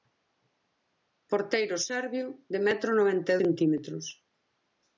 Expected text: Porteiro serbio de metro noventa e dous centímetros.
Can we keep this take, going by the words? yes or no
no